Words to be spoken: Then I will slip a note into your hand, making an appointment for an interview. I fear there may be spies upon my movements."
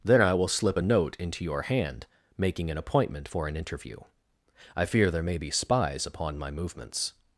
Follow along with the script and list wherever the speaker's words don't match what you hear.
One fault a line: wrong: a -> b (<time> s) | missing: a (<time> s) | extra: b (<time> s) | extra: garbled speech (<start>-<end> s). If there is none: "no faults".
no faults